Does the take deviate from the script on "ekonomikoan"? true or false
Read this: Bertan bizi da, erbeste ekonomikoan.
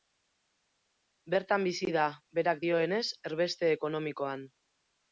false